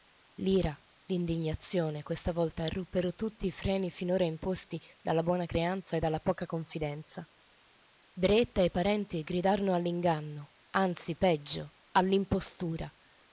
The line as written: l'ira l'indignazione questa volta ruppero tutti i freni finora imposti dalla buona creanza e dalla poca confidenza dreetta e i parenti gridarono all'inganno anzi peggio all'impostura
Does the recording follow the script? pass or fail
pass